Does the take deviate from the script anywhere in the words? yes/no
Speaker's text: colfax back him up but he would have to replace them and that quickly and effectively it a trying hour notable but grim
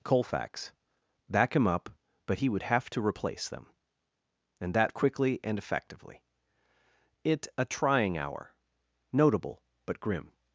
no